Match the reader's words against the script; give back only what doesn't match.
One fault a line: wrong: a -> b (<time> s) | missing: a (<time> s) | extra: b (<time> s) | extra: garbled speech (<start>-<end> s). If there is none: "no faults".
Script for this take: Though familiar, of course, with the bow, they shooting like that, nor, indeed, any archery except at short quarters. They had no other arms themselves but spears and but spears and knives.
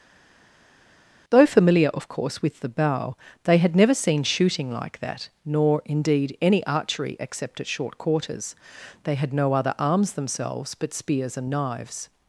extra: had never seen (3.6 s)
missing: but spears and (11.5 s)